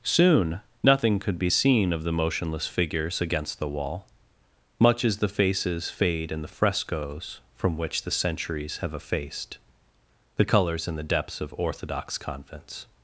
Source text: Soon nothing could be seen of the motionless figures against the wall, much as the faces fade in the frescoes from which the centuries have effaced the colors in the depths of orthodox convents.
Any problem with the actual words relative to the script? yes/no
no